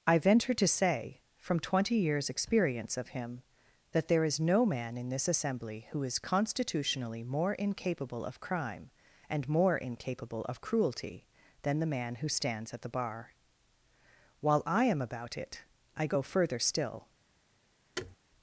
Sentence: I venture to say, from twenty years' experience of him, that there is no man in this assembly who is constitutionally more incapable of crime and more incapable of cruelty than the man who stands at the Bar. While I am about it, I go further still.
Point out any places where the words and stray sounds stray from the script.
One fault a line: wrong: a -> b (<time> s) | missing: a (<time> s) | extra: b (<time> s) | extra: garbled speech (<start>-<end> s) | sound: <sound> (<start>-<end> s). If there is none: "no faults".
sound: thud (18.0-18.2 s)